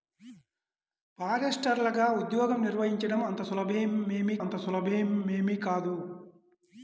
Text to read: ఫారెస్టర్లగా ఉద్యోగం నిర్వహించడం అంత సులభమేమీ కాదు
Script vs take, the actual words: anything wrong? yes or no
yes